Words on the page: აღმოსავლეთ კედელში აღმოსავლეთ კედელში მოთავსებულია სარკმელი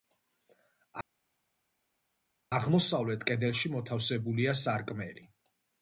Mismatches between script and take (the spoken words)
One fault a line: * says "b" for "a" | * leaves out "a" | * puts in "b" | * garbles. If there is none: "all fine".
* leaves out "აღმოსავლეთ კედელში"